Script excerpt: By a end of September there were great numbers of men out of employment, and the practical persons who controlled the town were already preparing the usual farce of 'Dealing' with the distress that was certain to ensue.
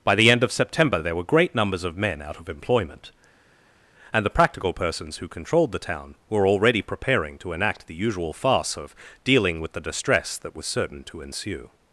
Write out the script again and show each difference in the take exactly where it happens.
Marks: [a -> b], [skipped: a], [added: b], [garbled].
By [a -> the] end of September there were great numbers of men out of employment, and the practical persons who controlled the town were already preparing [added: to enact] the usual farce of 'Dealing' with the distress that was certain to ensue.